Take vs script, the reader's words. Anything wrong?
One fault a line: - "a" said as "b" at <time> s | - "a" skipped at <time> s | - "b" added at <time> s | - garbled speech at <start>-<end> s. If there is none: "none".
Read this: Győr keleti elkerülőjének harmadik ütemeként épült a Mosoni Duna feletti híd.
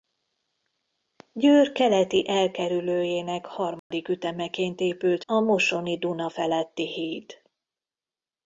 none